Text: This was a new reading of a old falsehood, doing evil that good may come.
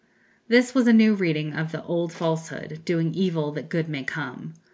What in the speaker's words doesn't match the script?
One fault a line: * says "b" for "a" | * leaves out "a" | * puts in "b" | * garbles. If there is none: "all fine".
* says "the" for "a"